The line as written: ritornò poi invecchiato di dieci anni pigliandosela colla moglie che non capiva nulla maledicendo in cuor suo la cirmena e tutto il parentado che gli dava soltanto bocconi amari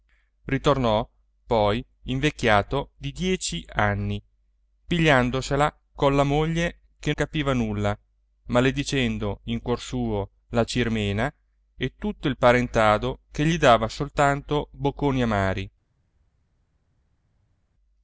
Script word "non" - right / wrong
wrong